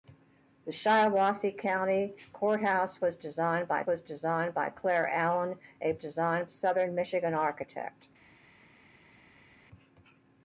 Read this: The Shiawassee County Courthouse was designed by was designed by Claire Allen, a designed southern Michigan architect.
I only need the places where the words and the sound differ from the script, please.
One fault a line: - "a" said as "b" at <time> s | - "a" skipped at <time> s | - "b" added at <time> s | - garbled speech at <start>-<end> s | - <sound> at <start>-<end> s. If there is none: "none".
none